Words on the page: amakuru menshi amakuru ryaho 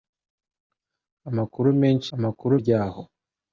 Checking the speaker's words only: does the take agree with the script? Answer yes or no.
yes